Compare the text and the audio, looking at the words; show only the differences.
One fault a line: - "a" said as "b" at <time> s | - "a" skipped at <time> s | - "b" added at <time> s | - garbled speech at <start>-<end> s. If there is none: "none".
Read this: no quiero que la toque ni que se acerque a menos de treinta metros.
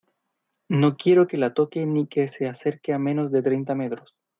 none